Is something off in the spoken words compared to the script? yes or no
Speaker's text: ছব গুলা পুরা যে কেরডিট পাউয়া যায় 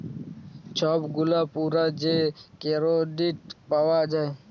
no